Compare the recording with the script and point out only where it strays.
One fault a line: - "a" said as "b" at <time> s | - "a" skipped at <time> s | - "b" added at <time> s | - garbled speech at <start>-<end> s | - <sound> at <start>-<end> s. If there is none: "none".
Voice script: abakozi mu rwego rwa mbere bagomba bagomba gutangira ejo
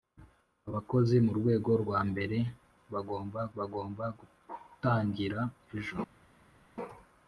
none